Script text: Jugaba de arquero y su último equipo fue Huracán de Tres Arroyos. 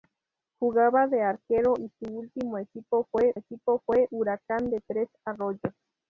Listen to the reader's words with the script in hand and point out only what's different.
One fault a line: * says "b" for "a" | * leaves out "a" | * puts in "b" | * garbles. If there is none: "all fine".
* puts in "equipo fue"